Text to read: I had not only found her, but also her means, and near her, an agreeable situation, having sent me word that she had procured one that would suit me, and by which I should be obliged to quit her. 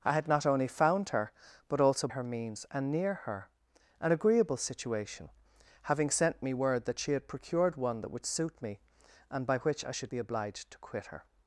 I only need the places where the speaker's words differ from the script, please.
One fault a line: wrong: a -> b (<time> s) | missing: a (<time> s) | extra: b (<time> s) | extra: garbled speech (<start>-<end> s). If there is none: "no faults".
no faults